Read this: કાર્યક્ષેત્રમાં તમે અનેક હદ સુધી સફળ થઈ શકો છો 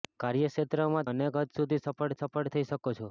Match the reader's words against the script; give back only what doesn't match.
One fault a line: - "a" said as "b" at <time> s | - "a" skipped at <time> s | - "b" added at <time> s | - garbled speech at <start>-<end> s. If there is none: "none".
- "તમે" skipped at 1.1 s
- "સફળ" added at 2.2 s